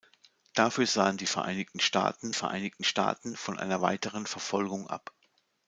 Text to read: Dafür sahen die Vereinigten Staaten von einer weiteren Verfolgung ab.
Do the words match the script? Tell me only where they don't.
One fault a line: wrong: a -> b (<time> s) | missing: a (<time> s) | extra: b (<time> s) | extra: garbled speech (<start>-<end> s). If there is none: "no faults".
extra: Vereinigten Staaten (2.3 s)